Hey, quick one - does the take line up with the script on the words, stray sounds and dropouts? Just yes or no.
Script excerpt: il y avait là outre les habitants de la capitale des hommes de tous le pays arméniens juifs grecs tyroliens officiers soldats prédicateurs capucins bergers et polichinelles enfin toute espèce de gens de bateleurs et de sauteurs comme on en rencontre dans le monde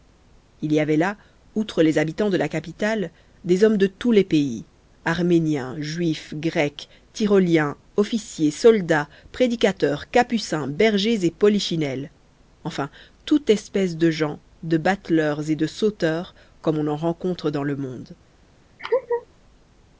no